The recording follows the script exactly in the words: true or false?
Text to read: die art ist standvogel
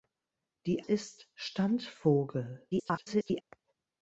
false